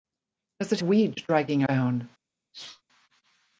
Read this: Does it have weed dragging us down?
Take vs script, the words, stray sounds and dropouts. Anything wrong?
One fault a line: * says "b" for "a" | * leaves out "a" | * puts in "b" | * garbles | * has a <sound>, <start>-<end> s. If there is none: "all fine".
* leaves out "have"
* leaves out "us"
* has a sneeze, 2.5-2.8 s